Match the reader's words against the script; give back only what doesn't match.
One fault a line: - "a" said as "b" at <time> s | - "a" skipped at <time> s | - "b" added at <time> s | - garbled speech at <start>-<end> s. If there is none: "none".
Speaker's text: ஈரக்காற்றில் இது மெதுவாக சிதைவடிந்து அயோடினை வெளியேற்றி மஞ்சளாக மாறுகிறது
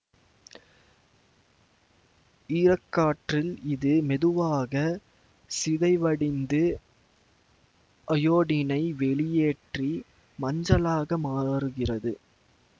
none